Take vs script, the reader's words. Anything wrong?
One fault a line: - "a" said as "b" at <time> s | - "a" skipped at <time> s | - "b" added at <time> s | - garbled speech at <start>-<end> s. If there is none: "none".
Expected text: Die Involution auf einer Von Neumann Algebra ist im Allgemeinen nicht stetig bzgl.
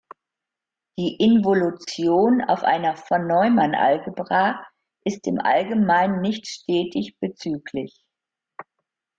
none